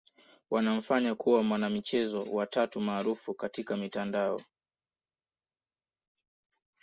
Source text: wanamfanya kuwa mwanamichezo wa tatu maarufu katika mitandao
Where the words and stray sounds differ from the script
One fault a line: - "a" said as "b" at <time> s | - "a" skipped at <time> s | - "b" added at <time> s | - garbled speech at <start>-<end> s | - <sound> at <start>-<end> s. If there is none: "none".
none